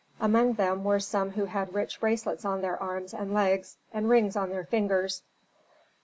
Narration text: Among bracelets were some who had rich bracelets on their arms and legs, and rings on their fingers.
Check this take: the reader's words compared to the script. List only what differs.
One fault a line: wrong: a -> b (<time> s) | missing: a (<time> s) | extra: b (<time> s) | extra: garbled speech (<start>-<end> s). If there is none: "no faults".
wrong: bracelets -> them (0.5 s)